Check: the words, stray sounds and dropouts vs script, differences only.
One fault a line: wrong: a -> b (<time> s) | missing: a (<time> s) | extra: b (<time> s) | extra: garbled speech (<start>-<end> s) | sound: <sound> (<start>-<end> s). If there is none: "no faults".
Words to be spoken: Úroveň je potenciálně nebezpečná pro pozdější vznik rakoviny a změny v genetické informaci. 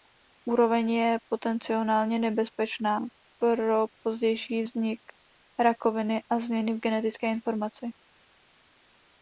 no faults